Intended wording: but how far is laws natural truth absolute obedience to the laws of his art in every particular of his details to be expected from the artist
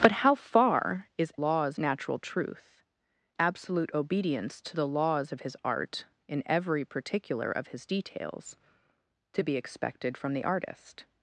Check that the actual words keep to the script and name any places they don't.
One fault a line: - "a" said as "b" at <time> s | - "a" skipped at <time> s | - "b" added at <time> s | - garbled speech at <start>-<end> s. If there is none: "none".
none